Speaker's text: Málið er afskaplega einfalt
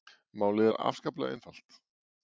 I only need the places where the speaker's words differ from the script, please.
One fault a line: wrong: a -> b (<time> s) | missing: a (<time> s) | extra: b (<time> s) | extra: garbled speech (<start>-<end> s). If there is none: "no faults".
no faults